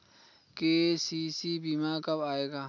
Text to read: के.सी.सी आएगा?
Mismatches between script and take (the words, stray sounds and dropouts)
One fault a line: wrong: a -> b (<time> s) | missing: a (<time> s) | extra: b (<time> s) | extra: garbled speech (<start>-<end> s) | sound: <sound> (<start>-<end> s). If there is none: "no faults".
extra: बीमा कब (1.6 s)